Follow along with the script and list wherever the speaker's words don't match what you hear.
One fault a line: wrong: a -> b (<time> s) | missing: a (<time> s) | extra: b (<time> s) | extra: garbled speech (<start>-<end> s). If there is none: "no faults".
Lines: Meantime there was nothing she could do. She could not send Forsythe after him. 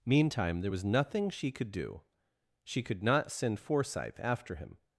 no faults